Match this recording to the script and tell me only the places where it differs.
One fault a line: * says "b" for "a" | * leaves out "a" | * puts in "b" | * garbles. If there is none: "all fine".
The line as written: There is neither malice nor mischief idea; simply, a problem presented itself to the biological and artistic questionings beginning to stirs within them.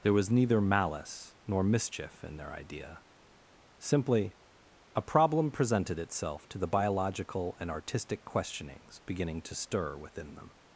* says "was" for "is"
* puts in "in their"
* says "stir" for "stirs"